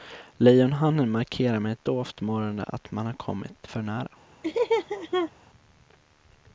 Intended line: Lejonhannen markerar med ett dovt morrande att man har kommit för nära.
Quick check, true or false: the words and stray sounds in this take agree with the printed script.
false